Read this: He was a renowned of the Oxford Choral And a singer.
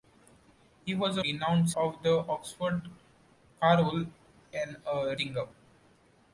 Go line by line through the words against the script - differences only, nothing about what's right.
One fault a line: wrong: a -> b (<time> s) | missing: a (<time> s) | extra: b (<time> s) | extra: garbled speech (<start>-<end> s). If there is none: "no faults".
no faults